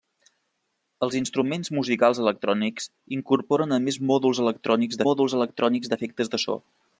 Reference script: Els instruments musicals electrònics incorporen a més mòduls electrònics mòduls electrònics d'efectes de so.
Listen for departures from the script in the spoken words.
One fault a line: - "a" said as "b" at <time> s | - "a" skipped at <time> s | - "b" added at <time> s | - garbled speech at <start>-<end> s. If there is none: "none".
none